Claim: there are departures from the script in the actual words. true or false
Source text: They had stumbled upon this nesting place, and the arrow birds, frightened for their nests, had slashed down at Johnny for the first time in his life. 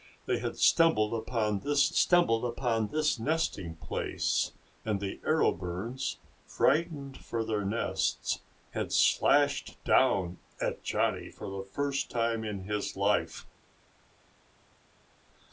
true